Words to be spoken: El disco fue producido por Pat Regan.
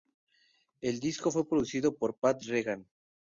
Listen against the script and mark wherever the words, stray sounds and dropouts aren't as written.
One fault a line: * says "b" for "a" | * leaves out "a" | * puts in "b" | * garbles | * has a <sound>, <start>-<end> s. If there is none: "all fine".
all fine